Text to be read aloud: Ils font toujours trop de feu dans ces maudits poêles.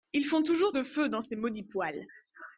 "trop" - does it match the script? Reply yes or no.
no